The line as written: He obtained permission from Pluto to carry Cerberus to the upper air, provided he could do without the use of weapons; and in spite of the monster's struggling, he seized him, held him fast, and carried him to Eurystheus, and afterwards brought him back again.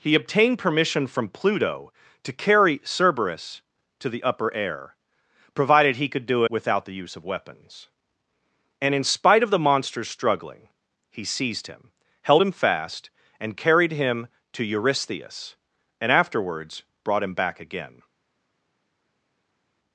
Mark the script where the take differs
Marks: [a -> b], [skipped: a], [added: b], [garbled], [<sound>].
He obtained permission from Pluto to carry Cerberus to the upper air, provided he could do without the use of weapons; and in spite of the monster's struggling, he seized him, held him fast, and carried him to Eurystheus, and afterwards brought him back again.